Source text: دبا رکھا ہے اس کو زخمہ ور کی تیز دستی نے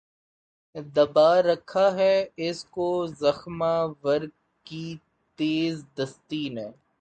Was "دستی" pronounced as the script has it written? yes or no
yes